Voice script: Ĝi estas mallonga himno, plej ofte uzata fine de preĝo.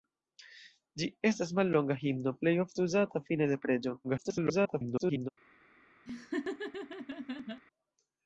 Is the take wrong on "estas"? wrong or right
right